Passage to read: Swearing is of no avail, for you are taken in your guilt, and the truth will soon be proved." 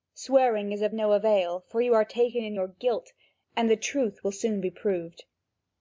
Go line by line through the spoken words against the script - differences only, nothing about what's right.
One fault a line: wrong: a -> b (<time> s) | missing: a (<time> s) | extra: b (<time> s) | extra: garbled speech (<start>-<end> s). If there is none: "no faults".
no faults